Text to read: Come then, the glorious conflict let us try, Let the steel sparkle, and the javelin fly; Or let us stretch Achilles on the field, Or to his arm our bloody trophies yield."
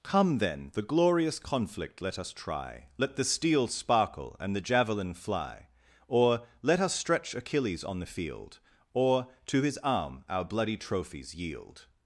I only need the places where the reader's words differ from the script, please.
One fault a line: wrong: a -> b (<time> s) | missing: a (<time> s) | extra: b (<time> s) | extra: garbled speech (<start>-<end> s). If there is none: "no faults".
no faults